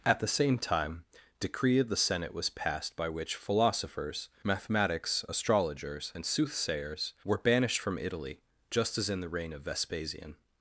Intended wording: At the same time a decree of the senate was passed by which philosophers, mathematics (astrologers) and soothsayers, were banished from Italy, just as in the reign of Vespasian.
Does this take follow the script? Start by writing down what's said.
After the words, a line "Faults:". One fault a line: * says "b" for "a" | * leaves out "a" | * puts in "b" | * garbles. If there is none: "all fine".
At the same time decree of the senate was passed by which philosophers, mathematics (astrologers) and soothsayers, were banished from Italy, just as in the reign of Vespasian.
Faults:
* leaves out "a"